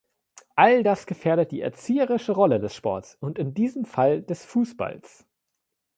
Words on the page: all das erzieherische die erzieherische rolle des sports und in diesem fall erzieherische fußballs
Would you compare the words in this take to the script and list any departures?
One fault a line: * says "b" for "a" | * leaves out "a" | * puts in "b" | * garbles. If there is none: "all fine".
* says "gefährdet" for "erzieherische"
* says "des" for "erzieherische"